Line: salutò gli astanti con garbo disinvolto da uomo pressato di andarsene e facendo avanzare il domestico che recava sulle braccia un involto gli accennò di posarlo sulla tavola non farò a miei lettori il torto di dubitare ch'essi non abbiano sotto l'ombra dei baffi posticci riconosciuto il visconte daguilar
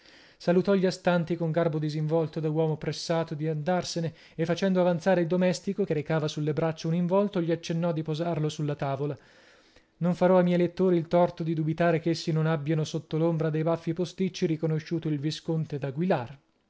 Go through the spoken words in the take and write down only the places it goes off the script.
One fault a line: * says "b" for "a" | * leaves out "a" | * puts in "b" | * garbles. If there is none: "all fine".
all fine